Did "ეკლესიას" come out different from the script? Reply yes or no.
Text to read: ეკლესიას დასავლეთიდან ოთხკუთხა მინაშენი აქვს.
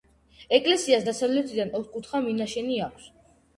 no